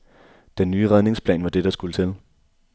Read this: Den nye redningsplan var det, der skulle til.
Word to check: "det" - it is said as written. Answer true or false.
true